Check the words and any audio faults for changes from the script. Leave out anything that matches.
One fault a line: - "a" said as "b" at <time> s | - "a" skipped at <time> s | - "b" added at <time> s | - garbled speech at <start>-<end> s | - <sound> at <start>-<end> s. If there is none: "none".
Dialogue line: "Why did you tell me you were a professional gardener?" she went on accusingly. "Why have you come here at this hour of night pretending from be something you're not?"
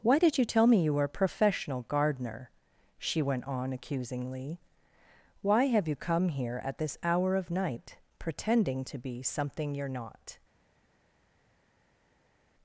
- "from" said as "to" at 8.8 s